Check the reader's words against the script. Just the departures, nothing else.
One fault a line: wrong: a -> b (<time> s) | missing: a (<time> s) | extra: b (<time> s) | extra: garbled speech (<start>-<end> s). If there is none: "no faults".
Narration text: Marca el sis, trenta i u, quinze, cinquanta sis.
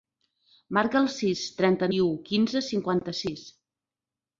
no faults